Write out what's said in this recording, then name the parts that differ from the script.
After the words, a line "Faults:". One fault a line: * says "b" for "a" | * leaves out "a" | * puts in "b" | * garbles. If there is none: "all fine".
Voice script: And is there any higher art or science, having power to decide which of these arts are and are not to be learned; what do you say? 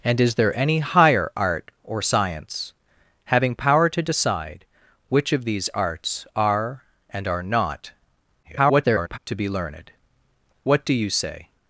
And is there any higher art or science, having power to decide which of these arts are and are not [garbled] to be learned; what do you say?
Faults:
* garbles